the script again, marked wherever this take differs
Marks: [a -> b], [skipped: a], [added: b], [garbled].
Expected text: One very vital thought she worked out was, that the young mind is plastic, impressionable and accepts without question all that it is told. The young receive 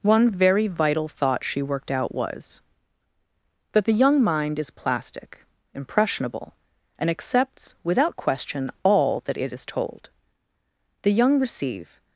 One very vital thought she worked out was, that the young mind is plastic, impressionable and accepts without question all that it is told. The young receive